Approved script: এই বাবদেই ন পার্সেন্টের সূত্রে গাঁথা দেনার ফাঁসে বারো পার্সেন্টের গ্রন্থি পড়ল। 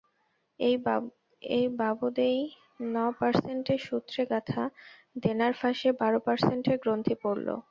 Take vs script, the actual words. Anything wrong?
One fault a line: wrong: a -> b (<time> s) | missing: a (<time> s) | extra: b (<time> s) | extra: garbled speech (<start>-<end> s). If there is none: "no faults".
no faults